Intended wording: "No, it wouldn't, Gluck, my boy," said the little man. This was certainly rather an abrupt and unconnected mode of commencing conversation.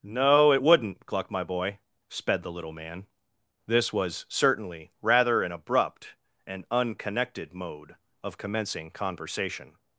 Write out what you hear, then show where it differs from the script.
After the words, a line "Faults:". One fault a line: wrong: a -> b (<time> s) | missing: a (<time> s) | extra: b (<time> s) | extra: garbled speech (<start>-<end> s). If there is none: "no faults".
"No, it wouldn't, Gluck, my boy," sped the little man. This was certainly rather an abrupt and unconnected mode of commencing conversation.
Faults:
wrong: said -> sped (2.1 s)